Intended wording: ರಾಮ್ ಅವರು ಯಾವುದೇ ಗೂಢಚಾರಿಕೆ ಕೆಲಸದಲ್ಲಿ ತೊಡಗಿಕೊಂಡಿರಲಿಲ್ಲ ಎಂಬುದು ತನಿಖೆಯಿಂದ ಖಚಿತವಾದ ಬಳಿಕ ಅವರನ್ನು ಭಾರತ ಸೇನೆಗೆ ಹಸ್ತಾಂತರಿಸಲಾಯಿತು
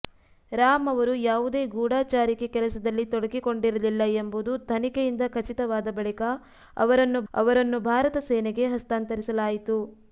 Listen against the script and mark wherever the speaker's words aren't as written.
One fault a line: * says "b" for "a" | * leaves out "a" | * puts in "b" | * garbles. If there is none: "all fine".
* puts in "ಅವರನ್ನು"